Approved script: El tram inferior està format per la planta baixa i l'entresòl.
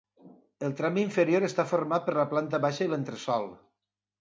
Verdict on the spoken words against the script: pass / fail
pass